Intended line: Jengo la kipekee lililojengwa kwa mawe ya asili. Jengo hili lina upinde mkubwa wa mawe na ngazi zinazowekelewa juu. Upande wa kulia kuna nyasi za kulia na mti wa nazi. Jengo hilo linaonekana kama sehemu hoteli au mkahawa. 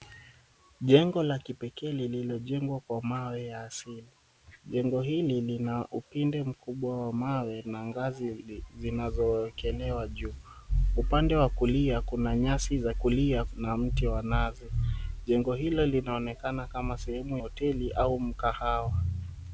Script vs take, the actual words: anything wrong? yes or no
no